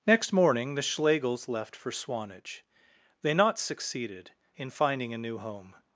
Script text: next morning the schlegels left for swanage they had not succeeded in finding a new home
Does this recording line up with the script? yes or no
no